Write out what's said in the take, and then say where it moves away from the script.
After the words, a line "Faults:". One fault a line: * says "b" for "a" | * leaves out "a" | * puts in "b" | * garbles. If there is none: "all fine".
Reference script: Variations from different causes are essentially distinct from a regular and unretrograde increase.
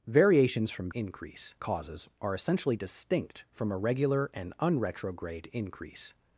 Variations from increase causes are essentially distinct from a regular and unretrograde increase.
Faults:
* says "increase" for "different"